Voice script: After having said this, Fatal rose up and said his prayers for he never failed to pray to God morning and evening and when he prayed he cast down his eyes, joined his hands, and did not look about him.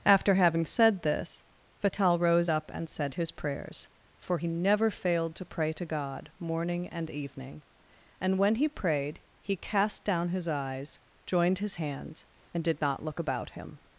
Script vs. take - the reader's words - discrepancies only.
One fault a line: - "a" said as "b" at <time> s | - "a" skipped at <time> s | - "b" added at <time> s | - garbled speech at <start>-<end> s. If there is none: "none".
none